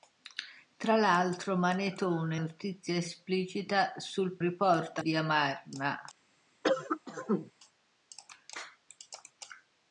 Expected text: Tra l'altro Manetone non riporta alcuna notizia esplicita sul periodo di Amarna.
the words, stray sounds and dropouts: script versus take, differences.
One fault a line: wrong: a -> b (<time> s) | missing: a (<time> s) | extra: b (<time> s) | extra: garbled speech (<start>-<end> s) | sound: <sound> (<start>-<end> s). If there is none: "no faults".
missing: non riporta alcuna (2.4 s)
wrong: periodo -> riporta (4.4 s)
sound: cough (6.6-7.5 s)